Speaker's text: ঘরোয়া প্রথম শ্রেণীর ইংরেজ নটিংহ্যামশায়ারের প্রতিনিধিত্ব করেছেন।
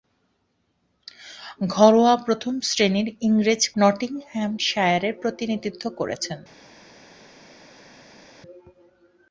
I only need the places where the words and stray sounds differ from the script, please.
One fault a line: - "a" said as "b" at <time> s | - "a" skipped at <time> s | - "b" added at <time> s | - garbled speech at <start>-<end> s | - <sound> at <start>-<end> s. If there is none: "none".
none